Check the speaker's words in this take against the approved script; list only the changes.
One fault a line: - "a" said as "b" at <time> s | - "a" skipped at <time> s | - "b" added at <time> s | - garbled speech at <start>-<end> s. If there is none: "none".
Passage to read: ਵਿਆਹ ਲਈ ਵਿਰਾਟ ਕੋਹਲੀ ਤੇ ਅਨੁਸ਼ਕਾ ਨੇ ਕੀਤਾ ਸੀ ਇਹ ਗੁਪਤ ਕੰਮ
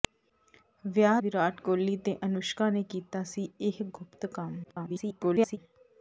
- "ਲਈ" skipped at 1.2 s
- garbled speech at 4.6-5.6 s